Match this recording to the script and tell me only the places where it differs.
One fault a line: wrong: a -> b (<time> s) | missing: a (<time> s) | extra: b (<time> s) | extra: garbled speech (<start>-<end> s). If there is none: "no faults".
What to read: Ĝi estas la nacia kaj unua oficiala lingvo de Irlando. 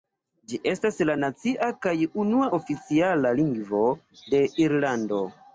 no faults